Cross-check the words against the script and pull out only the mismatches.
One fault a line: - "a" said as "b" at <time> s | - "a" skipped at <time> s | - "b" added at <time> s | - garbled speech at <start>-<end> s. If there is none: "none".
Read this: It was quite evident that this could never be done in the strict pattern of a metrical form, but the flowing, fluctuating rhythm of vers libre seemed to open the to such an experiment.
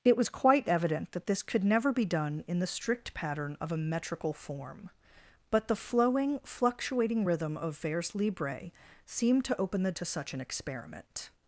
none